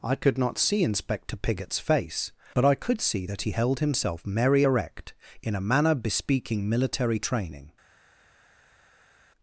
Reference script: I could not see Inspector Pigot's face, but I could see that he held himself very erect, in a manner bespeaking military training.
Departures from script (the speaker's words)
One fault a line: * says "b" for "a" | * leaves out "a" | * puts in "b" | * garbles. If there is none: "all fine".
* says "merry" for "very"